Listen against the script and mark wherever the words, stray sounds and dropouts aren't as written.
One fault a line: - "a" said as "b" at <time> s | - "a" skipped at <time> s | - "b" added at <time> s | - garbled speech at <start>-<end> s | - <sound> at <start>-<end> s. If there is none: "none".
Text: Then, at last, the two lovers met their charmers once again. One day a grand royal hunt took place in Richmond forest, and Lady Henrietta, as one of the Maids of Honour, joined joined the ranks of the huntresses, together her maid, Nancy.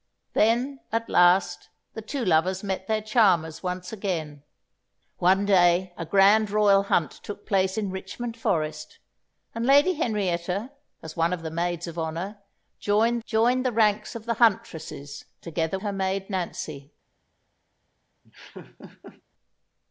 - laugh at 18.2-19.2 s